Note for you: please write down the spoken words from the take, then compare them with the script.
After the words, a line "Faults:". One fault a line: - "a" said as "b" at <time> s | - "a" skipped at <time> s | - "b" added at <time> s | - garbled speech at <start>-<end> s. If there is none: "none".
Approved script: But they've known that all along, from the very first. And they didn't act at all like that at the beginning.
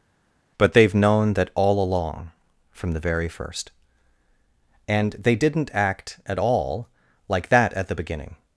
But they've known that all along, from the very first. And they didn't act at all like that at the beginning.
Faults:
none